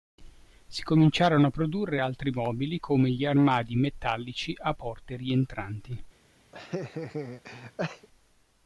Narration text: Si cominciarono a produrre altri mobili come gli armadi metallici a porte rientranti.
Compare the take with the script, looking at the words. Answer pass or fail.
pass